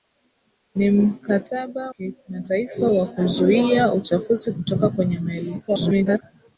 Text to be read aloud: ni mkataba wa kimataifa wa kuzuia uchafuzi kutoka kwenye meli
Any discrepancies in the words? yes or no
yes